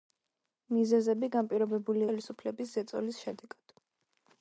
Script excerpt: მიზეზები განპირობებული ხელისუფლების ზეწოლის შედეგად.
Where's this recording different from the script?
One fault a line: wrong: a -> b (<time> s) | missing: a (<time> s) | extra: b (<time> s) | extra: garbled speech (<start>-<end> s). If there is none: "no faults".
no faults